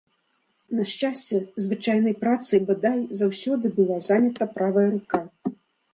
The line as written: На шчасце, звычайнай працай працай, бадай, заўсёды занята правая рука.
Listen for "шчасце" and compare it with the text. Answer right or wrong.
right